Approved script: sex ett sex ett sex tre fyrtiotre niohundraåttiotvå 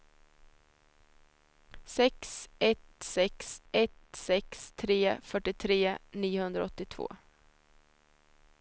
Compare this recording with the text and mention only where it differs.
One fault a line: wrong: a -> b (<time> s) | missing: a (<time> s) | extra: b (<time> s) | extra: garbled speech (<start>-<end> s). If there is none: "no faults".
no faults